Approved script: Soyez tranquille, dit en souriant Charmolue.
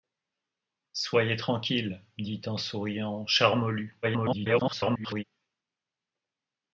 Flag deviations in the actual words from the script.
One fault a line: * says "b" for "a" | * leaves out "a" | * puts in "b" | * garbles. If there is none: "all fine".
* garbles